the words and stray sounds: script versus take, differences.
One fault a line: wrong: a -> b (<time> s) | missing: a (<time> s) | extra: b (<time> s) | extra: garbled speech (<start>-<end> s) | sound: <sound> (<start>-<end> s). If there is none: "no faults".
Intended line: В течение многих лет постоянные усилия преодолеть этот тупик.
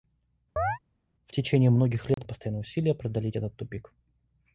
sound: chirp (0.6-0.8 s)
sound: dropout (2.1-2.2 s)